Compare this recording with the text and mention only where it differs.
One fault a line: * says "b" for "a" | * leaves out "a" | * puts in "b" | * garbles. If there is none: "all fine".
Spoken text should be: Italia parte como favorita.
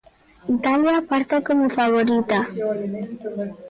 all fine